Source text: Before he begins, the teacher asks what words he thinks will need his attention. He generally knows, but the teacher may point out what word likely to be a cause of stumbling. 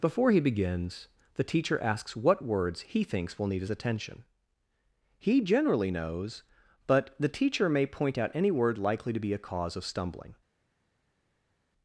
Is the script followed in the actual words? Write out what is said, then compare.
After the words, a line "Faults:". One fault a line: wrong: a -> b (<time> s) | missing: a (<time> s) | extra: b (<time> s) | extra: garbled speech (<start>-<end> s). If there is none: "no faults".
Before he begins, the teacher asks what words he thinks will need his attention. He generally knows, but the teacher may point out any word likely to be a cause of stumbling.
Faults:
wrong: what -> any (8.3 s)